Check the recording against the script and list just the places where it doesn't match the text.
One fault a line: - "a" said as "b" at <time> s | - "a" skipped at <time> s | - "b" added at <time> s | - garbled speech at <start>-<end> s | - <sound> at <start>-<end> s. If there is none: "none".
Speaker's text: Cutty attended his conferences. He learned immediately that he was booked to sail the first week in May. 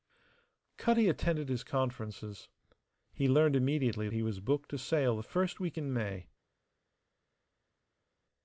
- "that" skipped at 4.1 s